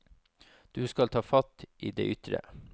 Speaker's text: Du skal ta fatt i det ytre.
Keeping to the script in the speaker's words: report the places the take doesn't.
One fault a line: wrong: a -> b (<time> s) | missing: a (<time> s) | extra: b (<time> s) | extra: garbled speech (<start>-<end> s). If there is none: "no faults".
no faults